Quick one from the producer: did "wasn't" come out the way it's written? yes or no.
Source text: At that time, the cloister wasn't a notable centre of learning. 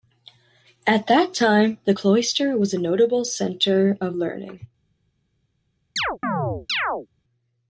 no